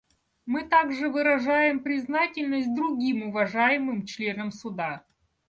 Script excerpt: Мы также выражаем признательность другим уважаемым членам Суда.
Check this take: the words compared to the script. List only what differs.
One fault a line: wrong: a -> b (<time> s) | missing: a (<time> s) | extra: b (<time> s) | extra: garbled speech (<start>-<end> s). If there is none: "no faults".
no faults